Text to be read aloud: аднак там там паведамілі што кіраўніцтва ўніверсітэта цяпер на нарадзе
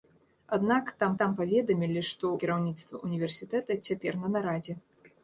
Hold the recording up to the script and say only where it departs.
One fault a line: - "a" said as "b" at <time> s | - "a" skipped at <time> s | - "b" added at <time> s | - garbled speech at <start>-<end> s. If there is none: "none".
none